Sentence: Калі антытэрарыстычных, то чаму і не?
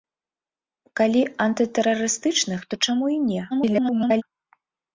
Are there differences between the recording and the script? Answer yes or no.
yes